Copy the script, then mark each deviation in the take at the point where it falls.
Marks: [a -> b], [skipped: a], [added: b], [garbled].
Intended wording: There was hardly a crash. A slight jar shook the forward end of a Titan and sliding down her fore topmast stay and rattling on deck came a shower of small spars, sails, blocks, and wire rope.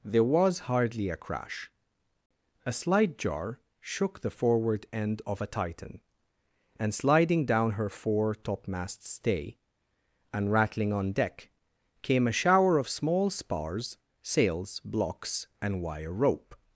There was hardly a crash. A slight jar shook the forward end of a Titan and sliding down her fore topmast stay and rattling on deck came a shower of small spars, sails, blocks, and wire rope.